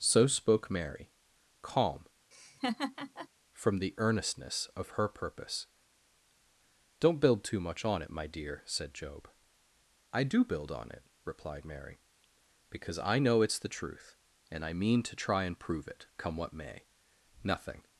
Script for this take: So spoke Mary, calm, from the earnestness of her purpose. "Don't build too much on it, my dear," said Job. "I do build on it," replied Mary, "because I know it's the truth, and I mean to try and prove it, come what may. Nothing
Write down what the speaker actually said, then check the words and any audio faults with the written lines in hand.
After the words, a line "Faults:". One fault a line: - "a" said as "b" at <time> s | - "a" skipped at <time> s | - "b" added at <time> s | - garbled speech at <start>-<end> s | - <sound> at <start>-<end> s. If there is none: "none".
So spoke Mary, calm, from the earnestness of her purpose. "Don't build too much on it, my dear," said Job. "I do build on it," replied Mary, "because I know it's the truth, and I mean to try and prove it, come what may. Nothing
Faults:
- laugh at 2.3-3.3 s